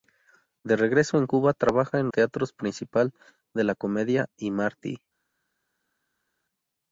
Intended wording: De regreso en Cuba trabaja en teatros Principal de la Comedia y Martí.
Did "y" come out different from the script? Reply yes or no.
no